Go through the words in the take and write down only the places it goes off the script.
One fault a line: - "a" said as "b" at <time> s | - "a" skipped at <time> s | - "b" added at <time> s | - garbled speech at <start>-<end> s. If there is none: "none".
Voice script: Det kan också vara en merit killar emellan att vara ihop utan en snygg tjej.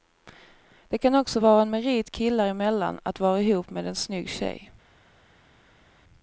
- "utan" said as "med" at 3.7 s